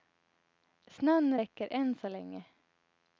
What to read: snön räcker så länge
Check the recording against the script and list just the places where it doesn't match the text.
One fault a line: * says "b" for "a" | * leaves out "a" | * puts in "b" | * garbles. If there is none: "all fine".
* puts in "än"